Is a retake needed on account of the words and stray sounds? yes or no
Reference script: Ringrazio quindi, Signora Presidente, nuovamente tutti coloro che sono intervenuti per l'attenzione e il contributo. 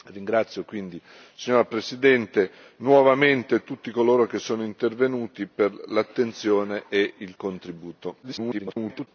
yes